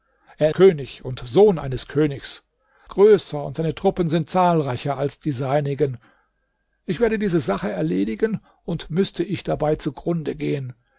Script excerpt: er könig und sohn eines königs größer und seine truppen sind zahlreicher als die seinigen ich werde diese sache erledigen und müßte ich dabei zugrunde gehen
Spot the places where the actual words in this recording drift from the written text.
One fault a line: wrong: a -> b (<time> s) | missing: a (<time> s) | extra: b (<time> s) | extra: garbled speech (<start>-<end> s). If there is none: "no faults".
no faults